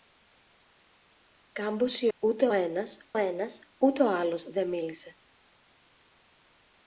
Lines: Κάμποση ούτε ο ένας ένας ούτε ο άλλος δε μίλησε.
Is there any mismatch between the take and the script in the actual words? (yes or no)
no